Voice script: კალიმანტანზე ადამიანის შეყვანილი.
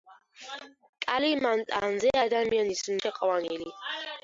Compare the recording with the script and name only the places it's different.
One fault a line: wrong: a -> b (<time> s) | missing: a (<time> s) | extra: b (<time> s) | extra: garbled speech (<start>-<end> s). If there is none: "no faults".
no faults